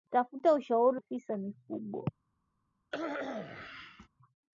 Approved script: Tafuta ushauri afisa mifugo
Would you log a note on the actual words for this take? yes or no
no